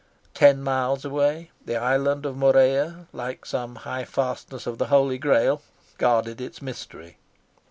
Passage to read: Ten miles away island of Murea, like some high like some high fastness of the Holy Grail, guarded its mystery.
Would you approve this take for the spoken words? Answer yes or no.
no